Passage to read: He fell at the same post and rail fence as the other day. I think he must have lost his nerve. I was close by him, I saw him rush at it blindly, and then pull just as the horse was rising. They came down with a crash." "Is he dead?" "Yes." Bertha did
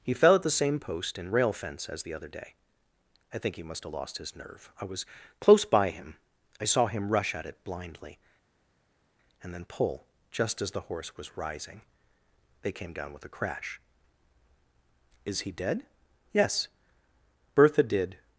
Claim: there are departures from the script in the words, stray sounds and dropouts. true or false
false